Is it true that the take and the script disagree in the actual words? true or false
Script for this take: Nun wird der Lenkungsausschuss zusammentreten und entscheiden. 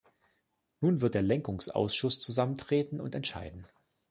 false